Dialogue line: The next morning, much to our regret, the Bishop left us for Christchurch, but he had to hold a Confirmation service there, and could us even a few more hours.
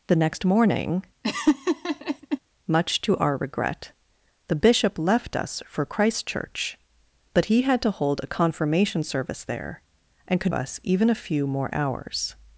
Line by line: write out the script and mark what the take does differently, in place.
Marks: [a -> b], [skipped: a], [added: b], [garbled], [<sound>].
The next morning, [laugh] much to our regret, the Bishop left us for Christchurch, but he had to hold a Confirmation service there, and could us even a few more hours.